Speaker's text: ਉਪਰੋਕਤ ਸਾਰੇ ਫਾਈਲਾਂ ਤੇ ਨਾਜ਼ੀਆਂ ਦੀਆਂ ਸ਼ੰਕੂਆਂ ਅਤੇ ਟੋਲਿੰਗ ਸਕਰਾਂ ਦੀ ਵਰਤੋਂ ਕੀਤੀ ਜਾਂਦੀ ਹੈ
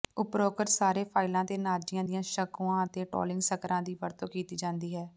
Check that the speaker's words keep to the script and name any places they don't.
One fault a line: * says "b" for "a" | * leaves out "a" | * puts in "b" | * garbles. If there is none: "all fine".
all fine